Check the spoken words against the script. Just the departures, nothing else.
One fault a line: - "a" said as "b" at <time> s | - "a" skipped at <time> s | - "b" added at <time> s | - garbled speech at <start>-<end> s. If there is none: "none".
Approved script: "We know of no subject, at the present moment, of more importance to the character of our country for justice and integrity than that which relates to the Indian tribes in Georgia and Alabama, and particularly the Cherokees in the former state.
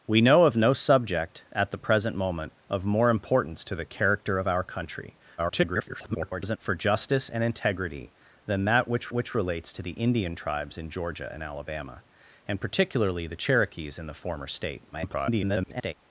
- garbled speech at 5.4-6.6 s
- "which" added at 9.1 s
- garbled speech at 14.9-15.9 s